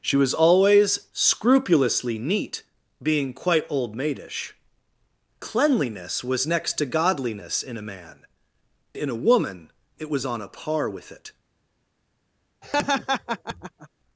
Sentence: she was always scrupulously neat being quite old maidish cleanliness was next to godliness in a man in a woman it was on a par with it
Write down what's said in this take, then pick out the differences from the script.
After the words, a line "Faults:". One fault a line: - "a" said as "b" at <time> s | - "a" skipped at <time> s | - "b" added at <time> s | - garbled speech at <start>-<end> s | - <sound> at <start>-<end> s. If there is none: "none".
she was always scrupulously neat being quite old maidish cleanliness was next to godliness in a man in a woman it was on a par with it
Faults:
- laugh at 12.6-13.9 s